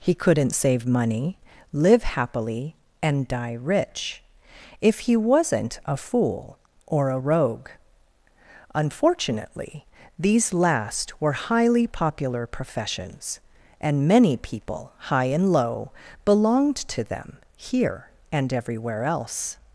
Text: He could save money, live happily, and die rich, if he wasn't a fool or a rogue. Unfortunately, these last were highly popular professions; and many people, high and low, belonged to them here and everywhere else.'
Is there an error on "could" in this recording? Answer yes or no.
yes